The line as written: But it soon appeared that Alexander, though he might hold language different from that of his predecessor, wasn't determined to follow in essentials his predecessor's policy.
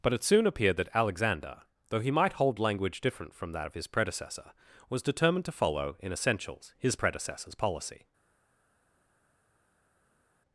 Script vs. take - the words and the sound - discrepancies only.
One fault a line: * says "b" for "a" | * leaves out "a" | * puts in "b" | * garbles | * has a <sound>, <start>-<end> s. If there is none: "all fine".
* says "was" for "wasn't"